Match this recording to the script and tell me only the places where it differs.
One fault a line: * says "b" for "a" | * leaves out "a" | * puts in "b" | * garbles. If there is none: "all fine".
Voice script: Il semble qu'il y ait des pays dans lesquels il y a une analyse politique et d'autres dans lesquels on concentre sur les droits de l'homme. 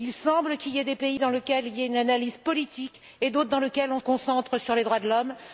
all fine